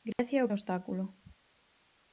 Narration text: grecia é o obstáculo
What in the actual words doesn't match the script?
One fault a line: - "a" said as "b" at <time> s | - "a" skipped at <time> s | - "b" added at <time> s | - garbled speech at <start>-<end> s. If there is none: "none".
none